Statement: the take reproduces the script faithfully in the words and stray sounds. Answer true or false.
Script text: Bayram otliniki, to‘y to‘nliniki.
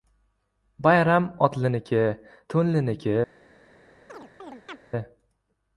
false